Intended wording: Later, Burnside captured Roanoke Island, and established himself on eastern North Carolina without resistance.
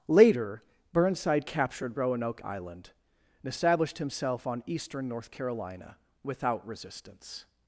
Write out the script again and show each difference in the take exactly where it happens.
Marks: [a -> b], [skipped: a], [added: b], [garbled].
Later, Burnside captured Roanoke Island, and established himself on eastern North Carolina without resistance.